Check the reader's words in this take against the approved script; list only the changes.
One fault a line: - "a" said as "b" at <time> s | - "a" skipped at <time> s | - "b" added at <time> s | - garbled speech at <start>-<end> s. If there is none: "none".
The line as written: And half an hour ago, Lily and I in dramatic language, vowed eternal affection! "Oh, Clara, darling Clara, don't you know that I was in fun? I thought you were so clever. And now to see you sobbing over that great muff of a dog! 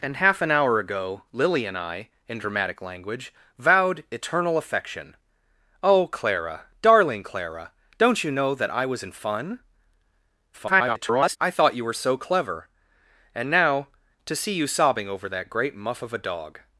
- garbled speech at 10.5-11.4 s